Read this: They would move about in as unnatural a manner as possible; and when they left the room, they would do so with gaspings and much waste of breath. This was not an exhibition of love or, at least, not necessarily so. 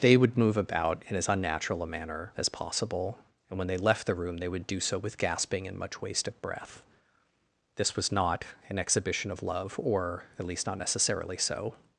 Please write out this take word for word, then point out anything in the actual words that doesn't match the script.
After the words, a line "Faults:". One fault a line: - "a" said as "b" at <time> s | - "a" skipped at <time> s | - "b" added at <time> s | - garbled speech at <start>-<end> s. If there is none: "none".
They would move about in as unnatural a manner as possible; and when they left the room, they would do so with gasping and much waste of breath. This was not an exhibition of love or, at least, not necessarily so.
Faults:
- "gaspings" said as "gasping" at 5.2 s